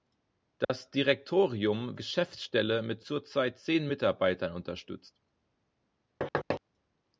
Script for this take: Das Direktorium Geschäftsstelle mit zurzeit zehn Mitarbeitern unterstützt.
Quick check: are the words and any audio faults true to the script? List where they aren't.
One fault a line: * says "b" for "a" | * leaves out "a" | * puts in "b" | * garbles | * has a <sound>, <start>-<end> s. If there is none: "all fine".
* has a dropout, 0.6-0.7 s
* has a thud, 6.2-6.6 s